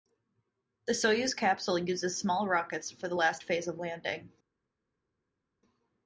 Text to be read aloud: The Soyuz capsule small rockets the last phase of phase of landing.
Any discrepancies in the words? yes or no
yes